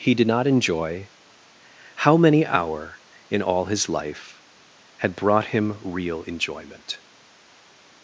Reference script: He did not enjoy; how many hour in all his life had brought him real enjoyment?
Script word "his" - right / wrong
right